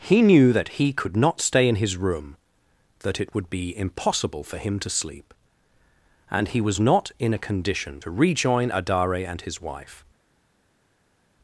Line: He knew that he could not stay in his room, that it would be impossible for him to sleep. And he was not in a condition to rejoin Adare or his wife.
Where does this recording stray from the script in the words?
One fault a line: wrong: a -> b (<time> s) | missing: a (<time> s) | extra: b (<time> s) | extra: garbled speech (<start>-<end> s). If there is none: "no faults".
wrong: or -> and (9.3 s)